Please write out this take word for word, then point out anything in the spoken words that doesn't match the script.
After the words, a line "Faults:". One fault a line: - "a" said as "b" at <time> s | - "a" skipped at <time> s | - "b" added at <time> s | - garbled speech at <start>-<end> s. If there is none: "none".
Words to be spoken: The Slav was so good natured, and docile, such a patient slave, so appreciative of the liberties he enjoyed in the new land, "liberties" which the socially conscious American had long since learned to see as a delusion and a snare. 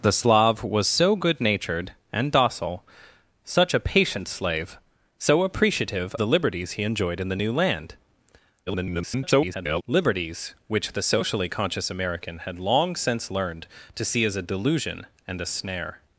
The Slav was so good natured, and docile, such a patient slave, so appreciative the liberties he enjoyed in the new land, [garbled] "liberties" which the socially conscious American had long since learned to see as a delusion and a snare.
Faults:
- "of" skipped at 6.2 s
- garbled speech at 8.7-9.8 s